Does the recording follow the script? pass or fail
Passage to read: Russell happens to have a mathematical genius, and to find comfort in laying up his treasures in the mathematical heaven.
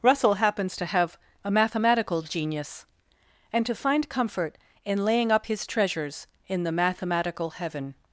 pass